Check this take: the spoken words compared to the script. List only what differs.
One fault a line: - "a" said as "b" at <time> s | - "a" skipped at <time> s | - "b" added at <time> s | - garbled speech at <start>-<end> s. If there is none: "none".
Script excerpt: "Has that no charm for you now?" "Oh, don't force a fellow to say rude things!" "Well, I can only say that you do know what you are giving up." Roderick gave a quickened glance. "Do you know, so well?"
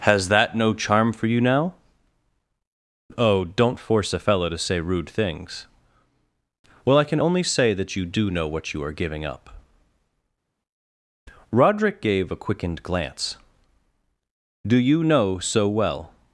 none